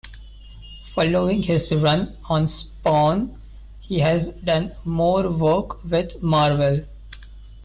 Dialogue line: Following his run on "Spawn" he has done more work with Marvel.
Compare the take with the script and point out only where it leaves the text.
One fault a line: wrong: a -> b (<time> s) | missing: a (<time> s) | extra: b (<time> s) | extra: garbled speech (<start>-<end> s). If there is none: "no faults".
no faults